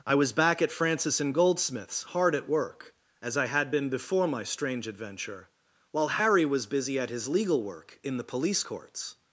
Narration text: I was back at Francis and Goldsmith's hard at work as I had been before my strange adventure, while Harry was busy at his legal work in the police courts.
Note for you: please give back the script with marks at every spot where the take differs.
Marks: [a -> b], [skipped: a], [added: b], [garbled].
I was back at Francis and Goldsmith's hard at work as I had been before my strange adventure, while Harry was busy at his legal work in the police courts.